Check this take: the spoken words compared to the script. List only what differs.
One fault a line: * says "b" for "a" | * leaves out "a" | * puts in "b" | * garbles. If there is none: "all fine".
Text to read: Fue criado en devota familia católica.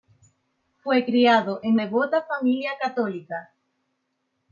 all fine